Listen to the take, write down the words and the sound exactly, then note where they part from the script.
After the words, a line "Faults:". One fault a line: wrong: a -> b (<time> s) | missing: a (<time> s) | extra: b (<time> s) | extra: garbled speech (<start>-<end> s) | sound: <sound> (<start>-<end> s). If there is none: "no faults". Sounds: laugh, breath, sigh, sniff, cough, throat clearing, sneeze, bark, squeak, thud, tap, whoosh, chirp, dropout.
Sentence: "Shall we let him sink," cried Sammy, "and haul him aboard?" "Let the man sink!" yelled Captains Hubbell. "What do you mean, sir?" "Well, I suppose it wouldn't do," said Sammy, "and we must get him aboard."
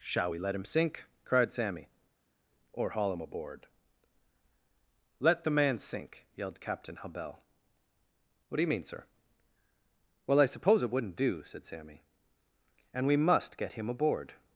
"Shall we let him sink," cried Sammy, "or haul him aboard?" "Let the man sink!" yelled Captain Hubbell. "What do you mean, sir?" "Well, I suppose it wouldn't do," said Sammy, "and we must get him aboard."
Faults:
wrong: and -> or (2.7 s)
wrong: Captains -> Captain (6.6 s)